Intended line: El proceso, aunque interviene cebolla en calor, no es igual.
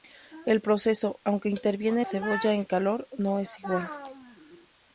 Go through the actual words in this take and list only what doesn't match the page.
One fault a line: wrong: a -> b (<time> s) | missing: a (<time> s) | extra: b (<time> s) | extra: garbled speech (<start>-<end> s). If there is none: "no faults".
no faults